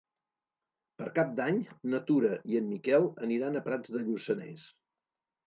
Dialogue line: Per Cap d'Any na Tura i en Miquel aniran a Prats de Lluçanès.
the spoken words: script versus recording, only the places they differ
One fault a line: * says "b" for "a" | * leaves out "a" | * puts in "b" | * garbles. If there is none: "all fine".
all fine